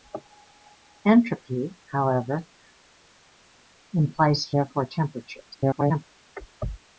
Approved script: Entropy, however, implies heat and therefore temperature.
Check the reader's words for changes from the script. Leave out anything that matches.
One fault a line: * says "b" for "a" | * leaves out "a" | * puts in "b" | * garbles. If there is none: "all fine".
* leaves out "heat and"
* garbles